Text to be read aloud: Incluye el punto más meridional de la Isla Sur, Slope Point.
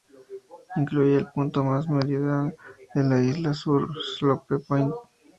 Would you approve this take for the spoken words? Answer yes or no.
yes